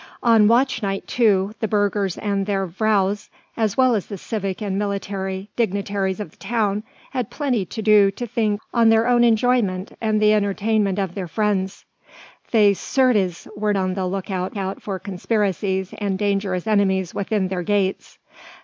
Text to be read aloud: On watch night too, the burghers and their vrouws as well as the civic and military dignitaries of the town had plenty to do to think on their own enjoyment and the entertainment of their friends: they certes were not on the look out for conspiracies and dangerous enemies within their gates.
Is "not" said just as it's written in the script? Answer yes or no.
no